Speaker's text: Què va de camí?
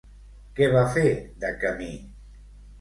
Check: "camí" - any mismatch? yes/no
no